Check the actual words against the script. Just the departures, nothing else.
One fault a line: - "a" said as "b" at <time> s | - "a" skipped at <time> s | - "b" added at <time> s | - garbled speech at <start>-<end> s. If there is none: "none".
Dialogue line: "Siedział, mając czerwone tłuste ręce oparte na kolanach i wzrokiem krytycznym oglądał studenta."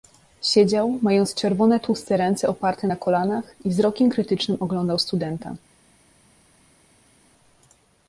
none